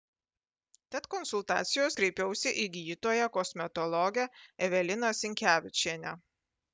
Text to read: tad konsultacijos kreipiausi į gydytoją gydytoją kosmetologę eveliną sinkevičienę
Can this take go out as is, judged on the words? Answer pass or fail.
fail